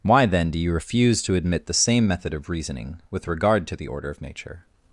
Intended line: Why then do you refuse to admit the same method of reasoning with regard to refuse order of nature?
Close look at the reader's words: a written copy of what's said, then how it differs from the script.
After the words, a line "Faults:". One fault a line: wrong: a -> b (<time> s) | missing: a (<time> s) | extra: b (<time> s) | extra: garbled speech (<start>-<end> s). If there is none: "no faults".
Why then do you refuse to admit the same method of reasoning with regard to the order of nature?
Faults:
wrong: refuse -> the (3.8 s)